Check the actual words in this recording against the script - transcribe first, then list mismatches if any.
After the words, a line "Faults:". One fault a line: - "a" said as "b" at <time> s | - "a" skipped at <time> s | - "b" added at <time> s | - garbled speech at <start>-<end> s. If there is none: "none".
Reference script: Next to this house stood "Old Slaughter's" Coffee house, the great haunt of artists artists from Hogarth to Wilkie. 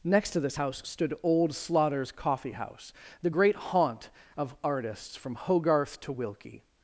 Next to this house stood "Old Slaughter's" Coffee house, the great haunt of artists from Hogarth to Wilkie.
Faults:
- "artists" skipped at 5.2 s